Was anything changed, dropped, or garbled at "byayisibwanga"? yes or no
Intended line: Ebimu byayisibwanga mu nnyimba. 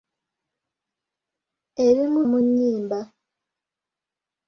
yes